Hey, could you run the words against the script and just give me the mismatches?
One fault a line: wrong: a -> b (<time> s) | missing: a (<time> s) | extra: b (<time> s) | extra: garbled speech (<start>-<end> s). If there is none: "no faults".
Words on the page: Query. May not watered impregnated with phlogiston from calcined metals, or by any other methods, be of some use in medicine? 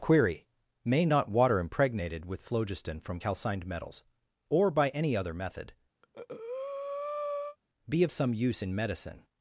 wrong: watered -> water (1.3 s)
wrong: methods -> method (5.3 s)